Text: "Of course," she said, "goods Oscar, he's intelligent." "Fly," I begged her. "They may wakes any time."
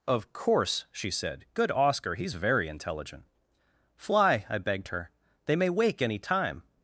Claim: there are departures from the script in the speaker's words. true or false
true